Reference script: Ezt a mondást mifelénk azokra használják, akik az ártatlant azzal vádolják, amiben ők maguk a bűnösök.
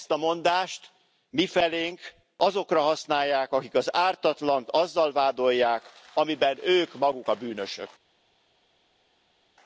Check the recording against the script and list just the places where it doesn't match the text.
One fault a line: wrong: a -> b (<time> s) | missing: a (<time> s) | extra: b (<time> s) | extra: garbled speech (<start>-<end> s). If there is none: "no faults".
no faults